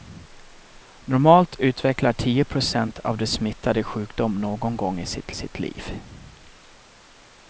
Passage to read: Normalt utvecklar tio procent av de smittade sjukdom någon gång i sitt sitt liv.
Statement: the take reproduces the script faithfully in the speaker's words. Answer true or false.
true